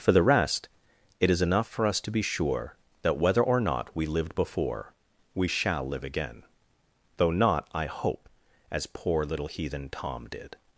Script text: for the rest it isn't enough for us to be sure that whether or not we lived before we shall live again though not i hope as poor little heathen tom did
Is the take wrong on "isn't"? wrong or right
wrong